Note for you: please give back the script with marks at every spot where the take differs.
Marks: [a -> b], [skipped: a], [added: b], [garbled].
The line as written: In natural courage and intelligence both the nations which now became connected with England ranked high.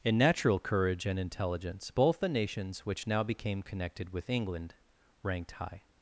In natural courage and intelligence both the nations which now became connected with England ranked high.